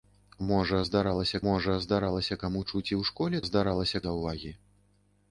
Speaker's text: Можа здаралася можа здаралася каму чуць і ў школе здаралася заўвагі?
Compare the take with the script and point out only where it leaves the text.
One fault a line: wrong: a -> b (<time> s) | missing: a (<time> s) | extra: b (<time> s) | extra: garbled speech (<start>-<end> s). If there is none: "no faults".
no faults